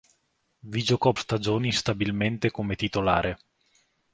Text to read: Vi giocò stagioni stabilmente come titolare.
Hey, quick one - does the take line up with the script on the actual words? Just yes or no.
yes